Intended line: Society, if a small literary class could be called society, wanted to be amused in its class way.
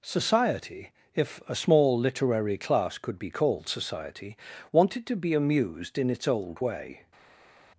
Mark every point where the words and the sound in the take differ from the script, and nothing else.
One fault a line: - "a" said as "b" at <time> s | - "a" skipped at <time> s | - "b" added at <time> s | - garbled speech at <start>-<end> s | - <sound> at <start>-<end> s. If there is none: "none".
- "class" said as "old" at 6.3 s